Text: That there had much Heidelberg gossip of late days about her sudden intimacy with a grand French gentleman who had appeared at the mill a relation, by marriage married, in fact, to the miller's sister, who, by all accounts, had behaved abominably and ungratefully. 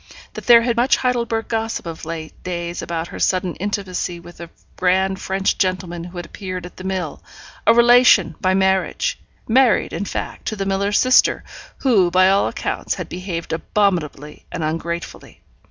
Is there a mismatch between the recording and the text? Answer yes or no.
no